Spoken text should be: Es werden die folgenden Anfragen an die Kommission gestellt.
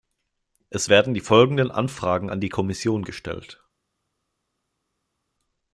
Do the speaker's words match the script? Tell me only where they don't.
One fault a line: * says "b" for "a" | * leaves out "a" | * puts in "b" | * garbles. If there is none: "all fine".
all fine